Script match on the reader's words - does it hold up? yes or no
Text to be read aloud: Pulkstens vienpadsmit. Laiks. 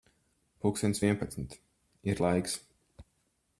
no